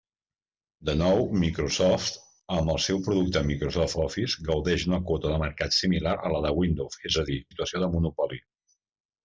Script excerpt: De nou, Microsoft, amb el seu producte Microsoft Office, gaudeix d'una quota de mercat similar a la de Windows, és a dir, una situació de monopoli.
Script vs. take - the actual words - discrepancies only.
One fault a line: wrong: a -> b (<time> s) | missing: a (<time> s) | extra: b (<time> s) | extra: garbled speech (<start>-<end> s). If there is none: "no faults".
missing: una (7.4 s)